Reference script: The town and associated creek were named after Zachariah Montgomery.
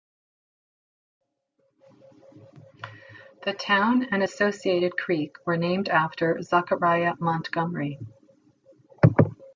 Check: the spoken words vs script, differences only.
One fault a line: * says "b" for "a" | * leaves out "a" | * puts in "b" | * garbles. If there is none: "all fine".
all fine